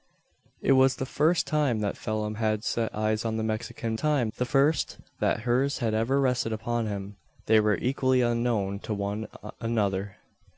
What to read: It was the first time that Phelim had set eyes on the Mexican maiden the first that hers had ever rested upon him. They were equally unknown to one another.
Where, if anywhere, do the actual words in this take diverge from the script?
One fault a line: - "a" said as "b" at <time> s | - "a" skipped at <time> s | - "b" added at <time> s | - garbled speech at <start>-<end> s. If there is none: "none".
- "maiden" said as "time" at 4.0 s